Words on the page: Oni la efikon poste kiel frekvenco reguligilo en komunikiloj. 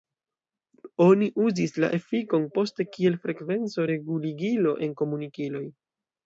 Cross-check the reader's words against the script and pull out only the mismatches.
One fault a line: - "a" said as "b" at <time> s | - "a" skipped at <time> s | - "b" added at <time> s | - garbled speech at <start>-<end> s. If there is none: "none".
- "uzis" added at 1.4 s